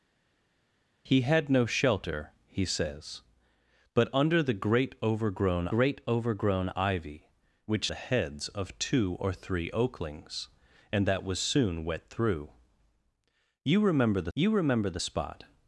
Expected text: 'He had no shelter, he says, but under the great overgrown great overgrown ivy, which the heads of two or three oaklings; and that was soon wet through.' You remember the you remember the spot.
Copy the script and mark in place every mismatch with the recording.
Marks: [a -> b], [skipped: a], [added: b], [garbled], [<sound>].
'He had no shelter, he says, but under the great overgrown great overgrown ivy, which the heads of two or three oaklings; and that was soon wet through.' You remember the you remember the spot.